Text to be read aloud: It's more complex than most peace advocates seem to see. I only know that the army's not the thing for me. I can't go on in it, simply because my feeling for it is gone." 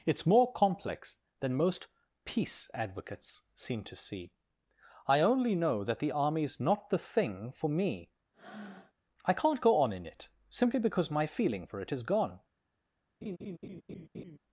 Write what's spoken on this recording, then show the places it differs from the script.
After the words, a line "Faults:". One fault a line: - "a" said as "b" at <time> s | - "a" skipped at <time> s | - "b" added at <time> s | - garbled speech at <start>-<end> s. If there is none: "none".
It's more complex than most peace advocates seem to see. I only know that the army's not the thing for me. I can't go on in it, simply because my feeling for it is gone."
Faults:
none